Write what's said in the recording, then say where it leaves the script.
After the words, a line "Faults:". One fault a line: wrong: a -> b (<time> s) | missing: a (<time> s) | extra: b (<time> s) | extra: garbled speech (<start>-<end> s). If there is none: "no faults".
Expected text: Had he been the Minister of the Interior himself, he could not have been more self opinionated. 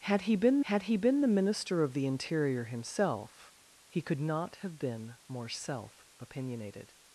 Had he been had he been the Minister of the Interior himself, he could not have been more self opinionated.
Faults:
extra: had he been (0.7 s)